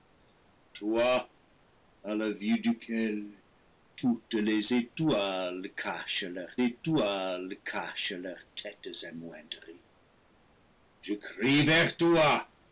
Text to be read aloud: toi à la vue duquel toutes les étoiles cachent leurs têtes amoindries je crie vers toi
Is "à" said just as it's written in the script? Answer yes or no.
yes